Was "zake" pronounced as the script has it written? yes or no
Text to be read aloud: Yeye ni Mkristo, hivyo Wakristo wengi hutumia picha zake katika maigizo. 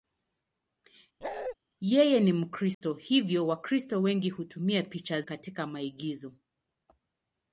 no